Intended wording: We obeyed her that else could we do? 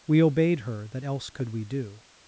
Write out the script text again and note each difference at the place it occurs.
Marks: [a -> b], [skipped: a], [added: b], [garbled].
We obeyed her that else could we do?